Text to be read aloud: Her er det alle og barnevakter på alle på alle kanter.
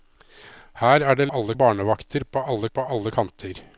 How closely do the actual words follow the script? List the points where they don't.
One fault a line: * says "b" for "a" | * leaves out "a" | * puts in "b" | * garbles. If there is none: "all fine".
all fine